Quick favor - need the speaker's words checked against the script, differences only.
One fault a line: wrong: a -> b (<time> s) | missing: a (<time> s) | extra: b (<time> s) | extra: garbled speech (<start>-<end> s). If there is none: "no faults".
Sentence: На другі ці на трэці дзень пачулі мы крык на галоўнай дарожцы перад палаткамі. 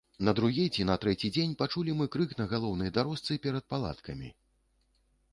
no faults